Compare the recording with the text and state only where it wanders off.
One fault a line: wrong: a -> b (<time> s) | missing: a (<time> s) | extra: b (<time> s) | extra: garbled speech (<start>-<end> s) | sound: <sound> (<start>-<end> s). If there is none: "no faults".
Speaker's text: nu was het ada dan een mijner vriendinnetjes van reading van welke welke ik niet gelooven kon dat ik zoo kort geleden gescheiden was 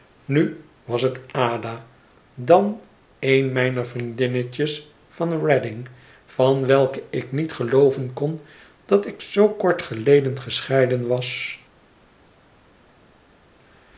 missing: welke (7.0 s)